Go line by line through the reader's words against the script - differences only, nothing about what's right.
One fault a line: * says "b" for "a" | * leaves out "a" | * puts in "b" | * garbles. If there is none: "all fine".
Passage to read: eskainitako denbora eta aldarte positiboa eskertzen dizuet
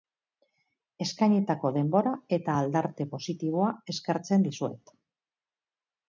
all fine